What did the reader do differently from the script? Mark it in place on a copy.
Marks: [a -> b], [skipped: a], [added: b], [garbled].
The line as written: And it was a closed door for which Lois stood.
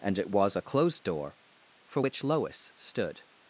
And it was a closed door for which Lois stood.